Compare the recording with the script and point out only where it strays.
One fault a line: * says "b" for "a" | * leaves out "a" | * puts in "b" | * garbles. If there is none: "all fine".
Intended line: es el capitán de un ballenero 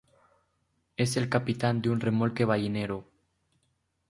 * puts in "remolque"